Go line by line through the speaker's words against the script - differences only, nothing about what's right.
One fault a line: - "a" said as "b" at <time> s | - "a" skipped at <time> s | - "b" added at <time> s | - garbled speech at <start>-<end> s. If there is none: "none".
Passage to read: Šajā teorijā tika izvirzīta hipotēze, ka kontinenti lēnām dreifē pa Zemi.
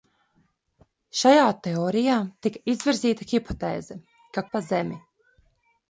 - "kontinenti lēnām dreifē" skipped at 4.5 s